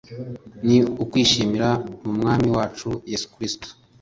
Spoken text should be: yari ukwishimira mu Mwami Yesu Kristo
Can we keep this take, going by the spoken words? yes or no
no